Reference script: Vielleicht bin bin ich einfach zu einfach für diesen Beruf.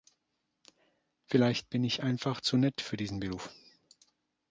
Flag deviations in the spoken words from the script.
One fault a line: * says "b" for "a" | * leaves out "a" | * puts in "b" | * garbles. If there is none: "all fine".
* leaves out "bin"
* says "nett" for "einfach"